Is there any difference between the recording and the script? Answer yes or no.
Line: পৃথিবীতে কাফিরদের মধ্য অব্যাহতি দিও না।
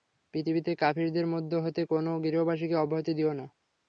yes